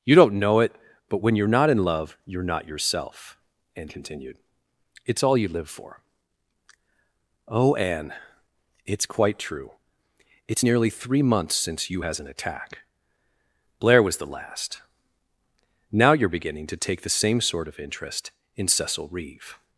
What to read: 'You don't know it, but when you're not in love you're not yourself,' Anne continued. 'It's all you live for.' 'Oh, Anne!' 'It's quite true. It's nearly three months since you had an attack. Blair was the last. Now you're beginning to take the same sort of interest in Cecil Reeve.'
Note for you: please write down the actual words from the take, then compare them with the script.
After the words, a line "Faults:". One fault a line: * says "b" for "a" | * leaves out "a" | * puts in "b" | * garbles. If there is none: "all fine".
'You don't know it, but when you're not in love you're not yourself,' Anne continued. 'It's all you live for.' 'Oh, Anne!' 'It's quite true. It's nearly three months since you has an attack. Blair was the last. Now you're beginning to take the same sort of interest in Cecil Reeve.'
Faults:
* says "has" for "had"